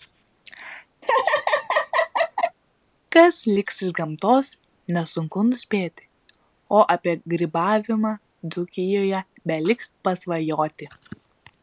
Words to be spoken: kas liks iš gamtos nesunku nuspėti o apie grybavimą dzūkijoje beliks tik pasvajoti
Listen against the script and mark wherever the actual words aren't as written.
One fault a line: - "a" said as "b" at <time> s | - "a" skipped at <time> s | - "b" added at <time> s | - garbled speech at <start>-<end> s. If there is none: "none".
- "tik" skipped at 9.9 s